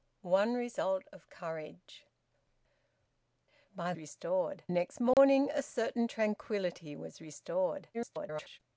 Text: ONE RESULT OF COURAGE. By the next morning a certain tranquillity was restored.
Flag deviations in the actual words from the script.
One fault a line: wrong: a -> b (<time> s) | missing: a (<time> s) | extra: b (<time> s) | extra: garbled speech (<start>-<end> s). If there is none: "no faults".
wrong: the -> restored (4.0 s)
extra: garbled speech (7.9-8.6 s)